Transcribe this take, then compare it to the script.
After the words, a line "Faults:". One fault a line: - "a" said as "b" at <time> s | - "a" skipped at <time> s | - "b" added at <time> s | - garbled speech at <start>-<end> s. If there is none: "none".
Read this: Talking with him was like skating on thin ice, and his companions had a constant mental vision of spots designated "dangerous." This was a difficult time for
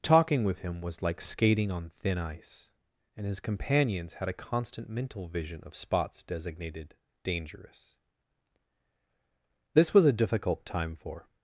Talking with him was like skating on thin ice, and his companions had a constant mental vision of spots designated "dangerous." This was a difficult time for
Faults:
none